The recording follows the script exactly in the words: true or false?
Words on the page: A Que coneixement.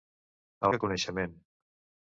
true